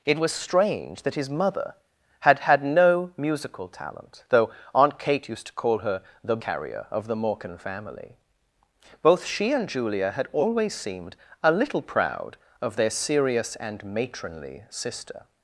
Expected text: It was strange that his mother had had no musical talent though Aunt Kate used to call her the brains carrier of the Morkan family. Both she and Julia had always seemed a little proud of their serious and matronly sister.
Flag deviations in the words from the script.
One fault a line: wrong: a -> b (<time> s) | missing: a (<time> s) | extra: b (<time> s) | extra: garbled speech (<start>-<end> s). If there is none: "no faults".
missing: brains (6.4 s)